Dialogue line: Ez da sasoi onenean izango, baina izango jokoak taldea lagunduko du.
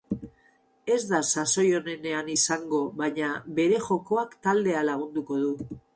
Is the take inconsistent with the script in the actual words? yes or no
yes